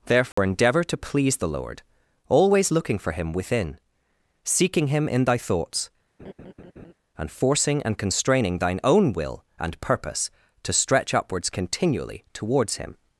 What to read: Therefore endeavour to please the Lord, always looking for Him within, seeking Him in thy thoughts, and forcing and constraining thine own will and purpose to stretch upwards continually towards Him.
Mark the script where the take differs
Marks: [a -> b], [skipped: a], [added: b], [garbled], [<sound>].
Therefore [dropout] endeavour to please the Lord, always looking for Him within, seeking Him in thy thoughts, [laugh] and forcing and constraining thine own will and purpose to stretch upwards continually towards Him.